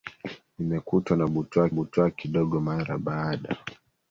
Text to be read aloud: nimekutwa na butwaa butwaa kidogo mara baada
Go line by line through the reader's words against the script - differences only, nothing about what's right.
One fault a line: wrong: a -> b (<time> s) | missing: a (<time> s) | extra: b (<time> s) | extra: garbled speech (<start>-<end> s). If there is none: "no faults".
no faults